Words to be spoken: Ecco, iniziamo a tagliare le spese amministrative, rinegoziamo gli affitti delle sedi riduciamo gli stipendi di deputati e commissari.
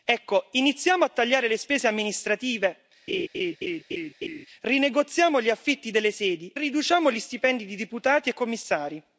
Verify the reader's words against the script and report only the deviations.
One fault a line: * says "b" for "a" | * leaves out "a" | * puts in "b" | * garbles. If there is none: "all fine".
all fine